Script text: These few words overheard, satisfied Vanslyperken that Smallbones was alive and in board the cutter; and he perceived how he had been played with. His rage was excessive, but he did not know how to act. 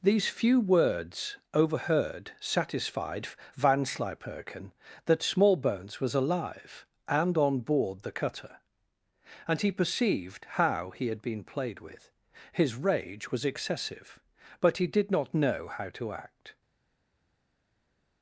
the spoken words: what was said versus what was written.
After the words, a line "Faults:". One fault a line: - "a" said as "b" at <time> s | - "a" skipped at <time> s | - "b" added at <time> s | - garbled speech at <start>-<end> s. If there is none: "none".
These few words overheard, satisfied Vanslyperken that Smallbones was alive and on board the cutter; and he perceived how he had been played with. His rage was excessive, but he did not know how to act.
Faults:
- "in" said as "on" at 7.4 s